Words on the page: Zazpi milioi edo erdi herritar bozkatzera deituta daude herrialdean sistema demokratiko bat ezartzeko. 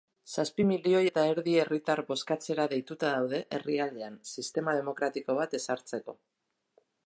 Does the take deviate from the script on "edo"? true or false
true